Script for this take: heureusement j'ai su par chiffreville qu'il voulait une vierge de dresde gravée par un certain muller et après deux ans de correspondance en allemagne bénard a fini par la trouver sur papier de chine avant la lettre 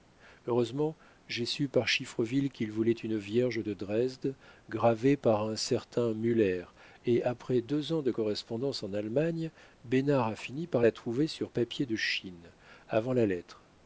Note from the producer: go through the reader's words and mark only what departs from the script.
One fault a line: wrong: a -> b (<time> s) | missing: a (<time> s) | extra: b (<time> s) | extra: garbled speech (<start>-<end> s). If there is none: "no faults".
no faults